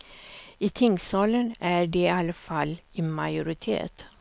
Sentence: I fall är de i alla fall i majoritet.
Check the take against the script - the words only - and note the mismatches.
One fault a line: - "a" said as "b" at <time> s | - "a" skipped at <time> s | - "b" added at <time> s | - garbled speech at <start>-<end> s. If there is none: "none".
- "fall" said as "tingssalen" at 0.7 s